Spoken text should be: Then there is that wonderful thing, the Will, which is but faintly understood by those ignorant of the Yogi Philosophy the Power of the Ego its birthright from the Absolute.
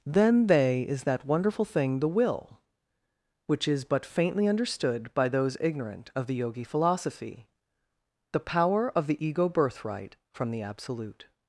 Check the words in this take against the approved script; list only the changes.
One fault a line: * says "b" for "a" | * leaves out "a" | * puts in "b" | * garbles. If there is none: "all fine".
* says "they" for "there"
* leaves out "its"